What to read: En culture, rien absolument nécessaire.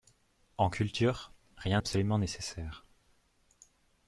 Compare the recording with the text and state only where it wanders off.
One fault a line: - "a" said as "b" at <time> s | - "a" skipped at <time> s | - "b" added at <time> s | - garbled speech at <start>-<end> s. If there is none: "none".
none